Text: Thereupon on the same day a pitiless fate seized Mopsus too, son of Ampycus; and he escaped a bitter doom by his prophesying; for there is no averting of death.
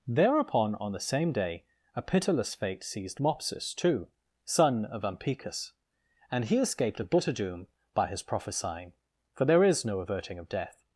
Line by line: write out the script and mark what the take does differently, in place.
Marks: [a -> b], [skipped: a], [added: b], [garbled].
Thereupon on the same day a pitiless fate seized Mopsus too, son of Ampycus; and he escaped a bitter doom by his prophesying; for there is no averting of death.